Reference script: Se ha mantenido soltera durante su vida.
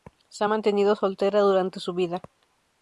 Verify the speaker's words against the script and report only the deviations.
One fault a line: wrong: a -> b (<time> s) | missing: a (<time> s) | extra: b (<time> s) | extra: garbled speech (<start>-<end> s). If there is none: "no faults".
no faults